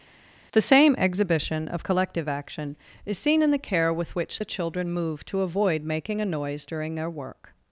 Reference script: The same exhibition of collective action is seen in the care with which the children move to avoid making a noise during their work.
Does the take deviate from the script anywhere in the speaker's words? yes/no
no